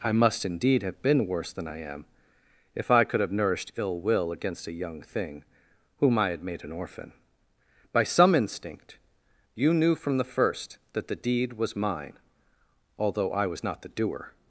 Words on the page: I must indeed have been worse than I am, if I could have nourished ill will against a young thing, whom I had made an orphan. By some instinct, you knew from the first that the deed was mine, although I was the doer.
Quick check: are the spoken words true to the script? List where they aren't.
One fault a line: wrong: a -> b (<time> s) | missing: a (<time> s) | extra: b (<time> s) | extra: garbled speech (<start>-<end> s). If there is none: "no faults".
extra: not (13.6 s)